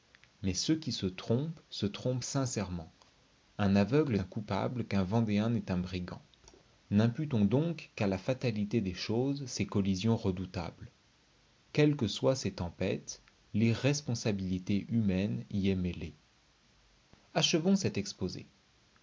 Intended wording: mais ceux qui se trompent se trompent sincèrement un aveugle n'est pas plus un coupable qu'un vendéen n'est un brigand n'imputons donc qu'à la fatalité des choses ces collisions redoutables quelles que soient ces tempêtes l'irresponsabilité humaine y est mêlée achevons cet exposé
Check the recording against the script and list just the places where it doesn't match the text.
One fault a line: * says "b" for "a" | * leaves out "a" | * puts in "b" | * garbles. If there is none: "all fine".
* leaves out "n'est pas plus"